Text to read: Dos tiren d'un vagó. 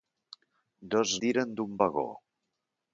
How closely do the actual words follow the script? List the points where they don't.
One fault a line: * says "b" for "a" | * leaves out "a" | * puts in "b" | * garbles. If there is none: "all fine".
all fine